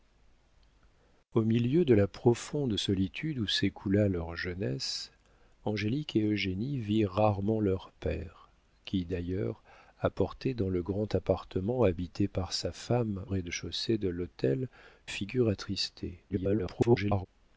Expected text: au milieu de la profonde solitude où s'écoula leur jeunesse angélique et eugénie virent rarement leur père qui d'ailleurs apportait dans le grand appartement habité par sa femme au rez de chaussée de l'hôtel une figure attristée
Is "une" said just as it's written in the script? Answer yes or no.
no